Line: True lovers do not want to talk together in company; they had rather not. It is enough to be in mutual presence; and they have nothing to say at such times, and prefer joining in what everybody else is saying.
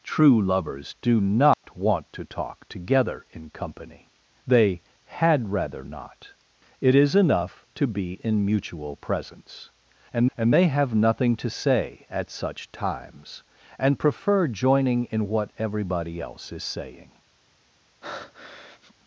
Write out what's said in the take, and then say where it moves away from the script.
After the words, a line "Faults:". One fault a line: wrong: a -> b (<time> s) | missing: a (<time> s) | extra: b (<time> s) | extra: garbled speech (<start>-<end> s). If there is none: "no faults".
True lovers do not want to talk together in company; they had rather not. It is enough to be in mutual presence; and and they have nothing to say at such times, and prefer joining in what everybody else is saying.
Faults:
extra: and (10.4 s)